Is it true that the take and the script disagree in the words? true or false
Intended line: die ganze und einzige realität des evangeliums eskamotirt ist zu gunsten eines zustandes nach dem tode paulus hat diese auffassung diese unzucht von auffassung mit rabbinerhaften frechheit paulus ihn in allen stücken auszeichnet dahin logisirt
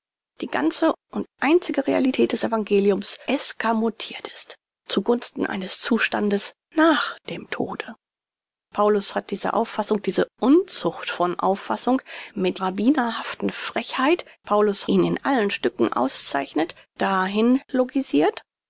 false